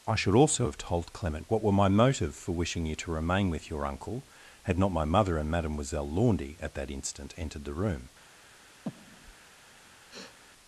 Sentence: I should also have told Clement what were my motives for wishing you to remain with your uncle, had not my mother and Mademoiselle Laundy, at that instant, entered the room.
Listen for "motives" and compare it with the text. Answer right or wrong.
wrong